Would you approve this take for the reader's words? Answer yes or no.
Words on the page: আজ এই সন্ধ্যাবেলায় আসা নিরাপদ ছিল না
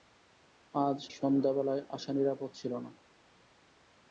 no